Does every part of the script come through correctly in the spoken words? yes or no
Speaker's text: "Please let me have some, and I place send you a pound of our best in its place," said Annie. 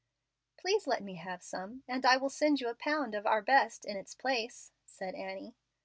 no